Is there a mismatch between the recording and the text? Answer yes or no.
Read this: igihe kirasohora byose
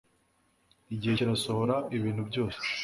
yes